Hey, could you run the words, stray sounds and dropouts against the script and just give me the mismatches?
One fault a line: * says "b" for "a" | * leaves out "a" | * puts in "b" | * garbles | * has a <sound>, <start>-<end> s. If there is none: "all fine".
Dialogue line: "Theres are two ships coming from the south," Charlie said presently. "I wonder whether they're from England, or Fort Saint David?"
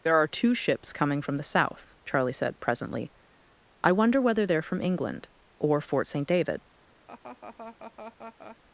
* says "There" for "Theres"
* has a laugh, 7.1-8.6 s